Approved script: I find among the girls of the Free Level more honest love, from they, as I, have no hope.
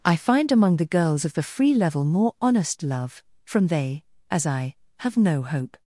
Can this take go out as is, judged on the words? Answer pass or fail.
pass